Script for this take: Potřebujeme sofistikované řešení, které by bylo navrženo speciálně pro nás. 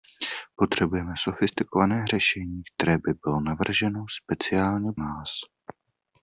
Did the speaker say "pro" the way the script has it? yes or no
no